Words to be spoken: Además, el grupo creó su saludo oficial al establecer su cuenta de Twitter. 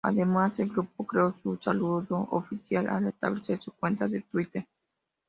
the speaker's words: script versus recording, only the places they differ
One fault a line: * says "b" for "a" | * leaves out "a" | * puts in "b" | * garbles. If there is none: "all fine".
all fine